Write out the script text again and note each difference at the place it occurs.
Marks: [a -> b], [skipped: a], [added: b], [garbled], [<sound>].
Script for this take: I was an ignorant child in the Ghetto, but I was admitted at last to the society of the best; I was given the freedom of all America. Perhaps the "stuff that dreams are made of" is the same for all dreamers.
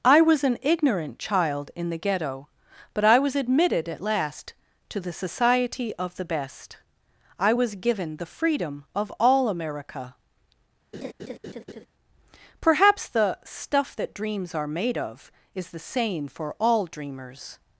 I was an ignorant child in the Ghetto, but I was admitted at last to the society of the best; I was given the freedom of all America. [laugh] Perhaps the "stuff that dreams are made of" is the same for all dreamers.